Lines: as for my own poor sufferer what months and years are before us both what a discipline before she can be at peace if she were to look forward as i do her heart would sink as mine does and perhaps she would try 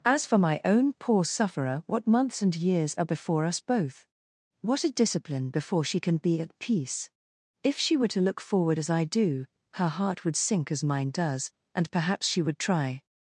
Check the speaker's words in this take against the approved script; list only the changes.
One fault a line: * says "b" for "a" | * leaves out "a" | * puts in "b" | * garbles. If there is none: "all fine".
all fine